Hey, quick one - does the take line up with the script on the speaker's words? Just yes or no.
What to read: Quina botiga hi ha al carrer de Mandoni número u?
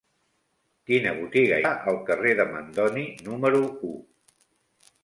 no